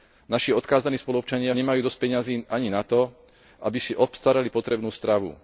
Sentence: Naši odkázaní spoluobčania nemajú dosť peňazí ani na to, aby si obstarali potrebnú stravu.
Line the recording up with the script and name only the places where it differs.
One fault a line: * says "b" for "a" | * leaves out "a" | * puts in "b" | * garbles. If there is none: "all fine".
all fine